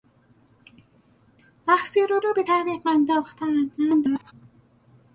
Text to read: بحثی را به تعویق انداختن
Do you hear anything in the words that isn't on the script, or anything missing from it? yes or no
yes